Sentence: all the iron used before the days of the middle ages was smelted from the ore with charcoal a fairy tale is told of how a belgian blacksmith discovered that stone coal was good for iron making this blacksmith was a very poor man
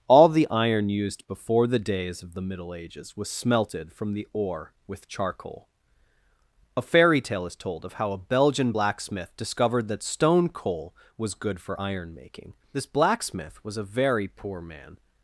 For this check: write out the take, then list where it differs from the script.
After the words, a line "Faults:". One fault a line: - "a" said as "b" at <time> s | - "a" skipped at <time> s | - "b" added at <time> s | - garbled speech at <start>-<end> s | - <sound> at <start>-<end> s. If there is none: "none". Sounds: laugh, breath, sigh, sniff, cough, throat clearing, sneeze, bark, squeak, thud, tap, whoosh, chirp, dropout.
all the iron used before the days of the middle ages was smelted from the ore with charcoal a fairy tale is told of how a belgian blacksmith discovered that stone coal was good for iron making this blacksmith was a very poor man
Faults:
none